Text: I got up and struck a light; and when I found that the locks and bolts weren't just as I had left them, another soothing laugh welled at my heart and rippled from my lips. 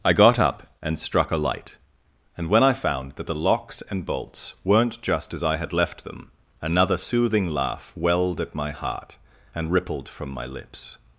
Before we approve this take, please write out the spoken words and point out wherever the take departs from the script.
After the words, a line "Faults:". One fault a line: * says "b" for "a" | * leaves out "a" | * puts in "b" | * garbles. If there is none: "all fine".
I got up and struck a light; and when I found that the locks and bolts weren't just as I had left them, another soothing laugh welled at my heart and rippled from my lips.
Faults:
all fine